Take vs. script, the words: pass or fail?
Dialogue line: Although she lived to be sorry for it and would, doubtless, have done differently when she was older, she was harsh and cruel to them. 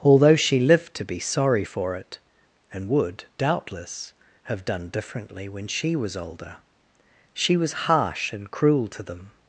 pass